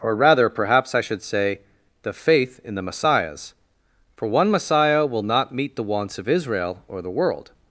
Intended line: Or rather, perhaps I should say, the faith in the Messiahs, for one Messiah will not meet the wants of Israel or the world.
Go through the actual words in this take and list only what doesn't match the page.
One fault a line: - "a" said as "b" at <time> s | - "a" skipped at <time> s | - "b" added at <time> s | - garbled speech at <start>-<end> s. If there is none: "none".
none